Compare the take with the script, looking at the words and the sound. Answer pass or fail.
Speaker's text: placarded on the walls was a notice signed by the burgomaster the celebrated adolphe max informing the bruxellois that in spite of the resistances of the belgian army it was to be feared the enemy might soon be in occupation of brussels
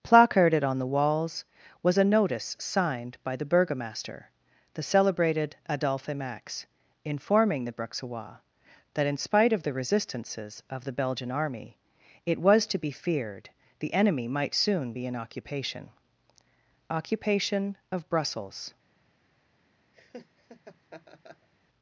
fail